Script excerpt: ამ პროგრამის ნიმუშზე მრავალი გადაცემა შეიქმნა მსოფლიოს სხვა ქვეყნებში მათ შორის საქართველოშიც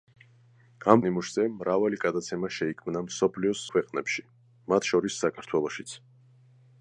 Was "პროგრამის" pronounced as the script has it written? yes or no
no